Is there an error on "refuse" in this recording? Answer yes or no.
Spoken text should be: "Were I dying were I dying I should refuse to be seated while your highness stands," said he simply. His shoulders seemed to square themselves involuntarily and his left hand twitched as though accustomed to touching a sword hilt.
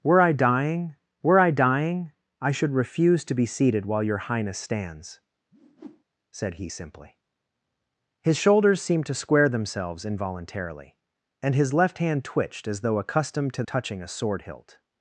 no